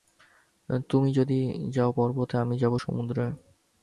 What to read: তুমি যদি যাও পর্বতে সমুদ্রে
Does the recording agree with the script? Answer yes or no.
no